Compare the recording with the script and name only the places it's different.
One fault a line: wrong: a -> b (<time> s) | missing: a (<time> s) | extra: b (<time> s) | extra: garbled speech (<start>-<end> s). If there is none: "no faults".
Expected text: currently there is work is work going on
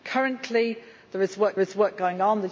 no faults